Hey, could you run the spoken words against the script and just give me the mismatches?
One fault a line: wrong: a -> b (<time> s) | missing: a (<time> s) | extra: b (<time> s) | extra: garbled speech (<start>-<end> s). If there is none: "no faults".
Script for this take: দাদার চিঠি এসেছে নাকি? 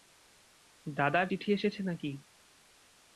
no faults